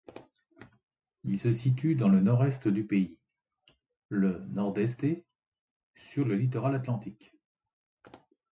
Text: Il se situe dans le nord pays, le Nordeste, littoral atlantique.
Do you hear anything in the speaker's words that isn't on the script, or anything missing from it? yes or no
yes